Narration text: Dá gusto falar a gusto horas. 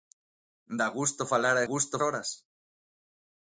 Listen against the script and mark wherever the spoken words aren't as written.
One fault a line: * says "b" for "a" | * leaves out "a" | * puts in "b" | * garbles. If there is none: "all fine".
all fine